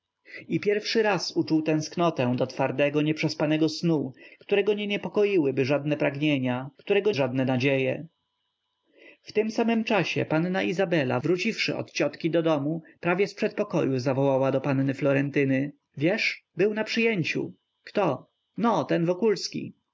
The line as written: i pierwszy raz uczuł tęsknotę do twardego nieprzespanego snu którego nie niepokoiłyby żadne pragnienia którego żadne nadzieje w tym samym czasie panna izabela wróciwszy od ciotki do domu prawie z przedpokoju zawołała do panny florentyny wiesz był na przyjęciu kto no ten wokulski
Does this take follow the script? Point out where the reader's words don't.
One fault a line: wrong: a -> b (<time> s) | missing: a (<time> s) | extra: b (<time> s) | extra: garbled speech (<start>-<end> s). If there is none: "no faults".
no faults